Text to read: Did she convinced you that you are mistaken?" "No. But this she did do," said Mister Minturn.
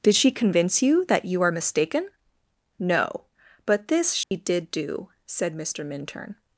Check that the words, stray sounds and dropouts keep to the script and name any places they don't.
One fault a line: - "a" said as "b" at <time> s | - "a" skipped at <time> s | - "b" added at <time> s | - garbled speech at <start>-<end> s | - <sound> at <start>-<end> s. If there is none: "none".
- "convinced" said as "convince" at 0.3 s
- dropout at 4.2-4.3 s